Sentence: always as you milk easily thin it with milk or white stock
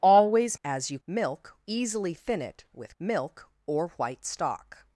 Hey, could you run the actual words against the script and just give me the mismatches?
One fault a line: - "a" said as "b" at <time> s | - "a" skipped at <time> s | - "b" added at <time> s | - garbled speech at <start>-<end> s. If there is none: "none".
none